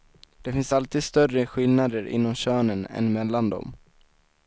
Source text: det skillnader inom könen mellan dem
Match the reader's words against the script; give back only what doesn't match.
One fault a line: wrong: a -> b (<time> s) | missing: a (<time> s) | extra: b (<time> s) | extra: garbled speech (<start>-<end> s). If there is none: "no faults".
extra: finns alltid större (0.5 s)
extra: än (2.9 s)